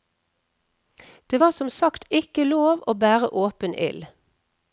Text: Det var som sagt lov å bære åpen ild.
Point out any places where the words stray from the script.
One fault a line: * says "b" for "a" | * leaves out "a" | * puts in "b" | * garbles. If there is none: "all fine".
* puts in "ikke"